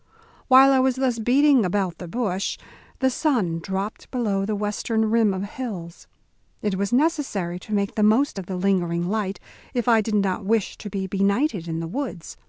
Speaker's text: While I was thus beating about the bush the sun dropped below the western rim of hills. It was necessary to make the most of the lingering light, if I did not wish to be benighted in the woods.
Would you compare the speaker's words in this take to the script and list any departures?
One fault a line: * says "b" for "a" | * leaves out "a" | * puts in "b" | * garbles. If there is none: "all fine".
all fine